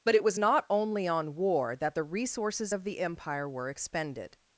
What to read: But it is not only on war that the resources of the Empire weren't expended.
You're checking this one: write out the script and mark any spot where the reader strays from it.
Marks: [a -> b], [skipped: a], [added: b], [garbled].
But it [is -> was] not only on war that the resources of the Empire [weren't -> were] expended.